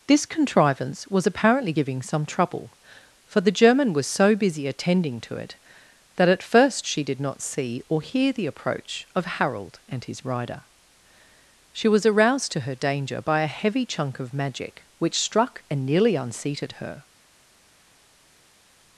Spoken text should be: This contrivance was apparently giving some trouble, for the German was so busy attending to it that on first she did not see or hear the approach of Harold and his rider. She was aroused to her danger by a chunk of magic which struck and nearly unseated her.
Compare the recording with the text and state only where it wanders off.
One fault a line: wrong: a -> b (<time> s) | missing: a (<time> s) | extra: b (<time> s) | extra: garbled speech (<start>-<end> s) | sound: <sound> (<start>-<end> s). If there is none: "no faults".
wrong: on -> at (6.3 s)
extra: heavy (13.5 s)